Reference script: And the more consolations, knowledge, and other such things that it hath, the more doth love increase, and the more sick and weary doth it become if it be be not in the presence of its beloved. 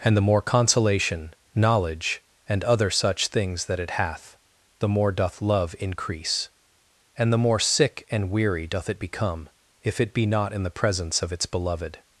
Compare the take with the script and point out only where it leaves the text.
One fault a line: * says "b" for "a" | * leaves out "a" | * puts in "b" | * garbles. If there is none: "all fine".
* says "consolation" for "consolations"
* leaves out "be"